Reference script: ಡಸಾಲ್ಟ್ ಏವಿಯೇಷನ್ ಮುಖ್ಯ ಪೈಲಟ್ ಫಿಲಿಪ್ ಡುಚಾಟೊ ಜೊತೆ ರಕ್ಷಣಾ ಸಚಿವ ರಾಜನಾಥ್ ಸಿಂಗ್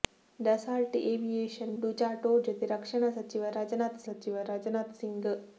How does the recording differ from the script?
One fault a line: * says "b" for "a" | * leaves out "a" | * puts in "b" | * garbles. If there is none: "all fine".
* leaves out "ಮುಖ್ಯ ಪೈಲಟ್ ಫಿಲಿಪ್"
* puts in "ಸಚಿವ ರಾಜನಾಥ್"